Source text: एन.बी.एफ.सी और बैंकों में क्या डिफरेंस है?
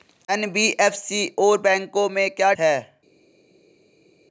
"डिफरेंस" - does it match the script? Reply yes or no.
no